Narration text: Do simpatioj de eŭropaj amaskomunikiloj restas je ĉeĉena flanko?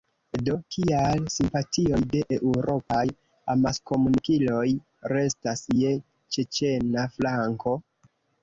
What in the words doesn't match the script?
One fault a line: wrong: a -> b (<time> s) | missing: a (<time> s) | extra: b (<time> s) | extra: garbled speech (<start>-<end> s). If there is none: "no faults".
extra: kial (0.8 s)